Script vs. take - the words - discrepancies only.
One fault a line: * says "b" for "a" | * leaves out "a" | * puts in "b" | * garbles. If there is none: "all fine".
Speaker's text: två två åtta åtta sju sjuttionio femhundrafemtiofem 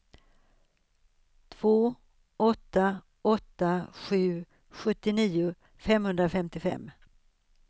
* leaves out "två"